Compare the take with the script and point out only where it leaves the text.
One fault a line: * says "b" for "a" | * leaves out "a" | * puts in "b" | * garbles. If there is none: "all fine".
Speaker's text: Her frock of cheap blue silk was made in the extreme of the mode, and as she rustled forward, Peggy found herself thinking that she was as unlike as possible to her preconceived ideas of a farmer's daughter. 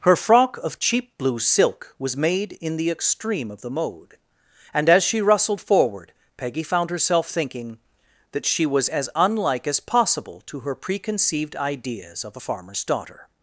all fine